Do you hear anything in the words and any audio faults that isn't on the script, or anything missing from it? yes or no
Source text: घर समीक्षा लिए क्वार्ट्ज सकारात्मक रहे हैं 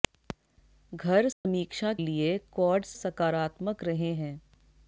yes